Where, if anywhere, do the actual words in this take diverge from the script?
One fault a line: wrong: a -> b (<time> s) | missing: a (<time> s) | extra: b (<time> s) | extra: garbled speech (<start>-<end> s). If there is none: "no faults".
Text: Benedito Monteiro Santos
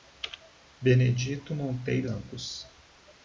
no faults